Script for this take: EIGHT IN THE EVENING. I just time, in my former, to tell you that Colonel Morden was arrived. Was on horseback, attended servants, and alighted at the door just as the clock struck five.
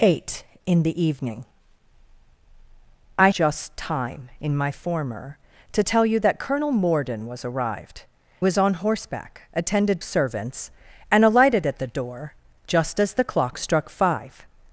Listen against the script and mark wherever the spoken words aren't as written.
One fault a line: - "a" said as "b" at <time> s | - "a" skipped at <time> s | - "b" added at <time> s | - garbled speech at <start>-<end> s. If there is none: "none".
none